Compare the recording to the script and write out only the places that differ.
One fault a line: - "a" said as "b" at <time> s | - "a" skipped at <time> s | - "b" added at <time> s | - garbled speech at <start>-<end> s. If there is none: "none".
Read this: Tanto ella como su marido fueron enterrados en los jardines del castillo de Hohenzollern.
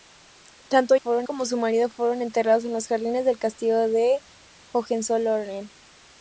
- "ella" said as "fueron" at 0.9 s